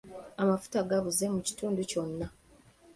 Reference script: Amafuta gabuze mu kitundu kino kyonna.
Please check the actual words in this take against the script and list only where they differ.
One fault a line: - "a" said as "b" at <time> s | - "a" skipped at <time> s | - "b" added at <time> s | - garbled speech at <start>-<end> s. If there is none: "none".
- "kino" skipped at 1.8 s